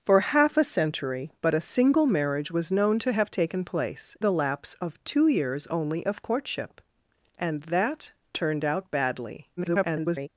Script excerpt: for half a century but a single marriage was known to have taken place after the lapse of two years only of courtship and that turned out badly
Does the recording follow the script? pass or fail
fail